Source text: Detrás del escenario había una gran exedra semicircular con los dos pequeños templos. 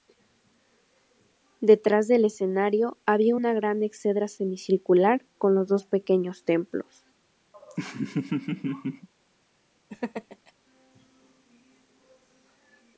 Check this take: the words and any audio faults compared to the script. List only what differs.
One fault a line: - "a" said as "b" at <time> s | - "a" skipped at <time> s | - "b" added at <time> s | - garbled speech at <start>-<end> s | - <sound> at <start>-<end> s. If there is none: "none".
- laugh at 7.5-9.1 s
- laugh at 9.9-10.5 s